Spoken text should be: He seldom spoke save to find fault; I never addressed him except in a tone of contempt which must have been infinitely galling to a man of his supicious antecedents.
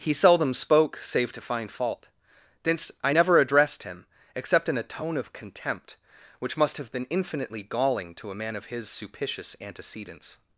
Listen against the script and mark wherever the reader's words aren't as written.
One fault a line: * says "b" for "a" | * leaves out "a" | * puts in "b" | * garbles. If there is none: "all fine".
* puts in "thence"